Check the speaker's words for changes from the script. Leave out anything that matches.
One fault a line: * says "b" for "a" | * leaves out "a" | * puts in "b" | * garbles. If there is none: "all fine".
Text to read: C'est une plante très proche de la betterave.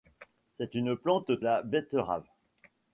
* leaves out "très proche de"